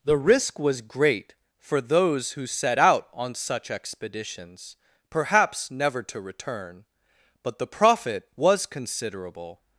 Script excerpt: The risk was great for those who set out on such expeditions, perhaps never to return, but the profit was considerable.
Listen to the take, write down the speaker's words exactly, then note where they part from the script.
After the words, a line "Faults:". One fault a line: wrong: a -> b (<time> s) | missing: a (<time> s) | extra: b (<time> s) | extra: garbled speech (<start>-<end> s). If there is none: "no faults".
The risk was great for those who set out on such expeditions, perhaps never to return, but the profit was considerable.
Faults:
no faults